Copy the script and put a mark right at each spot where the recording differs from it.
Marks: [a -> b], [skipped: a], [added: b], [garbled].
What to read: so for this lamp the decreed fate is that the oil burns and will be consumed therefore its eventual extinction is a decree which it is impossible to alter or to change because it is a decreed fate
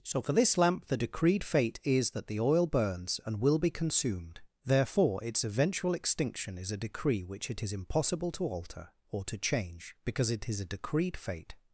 so for this lamp the decreed fate is that the oil burns and will be consumed therefore its eventual extinction is a decree which it is impossible to alter or to change because it is a decreed fate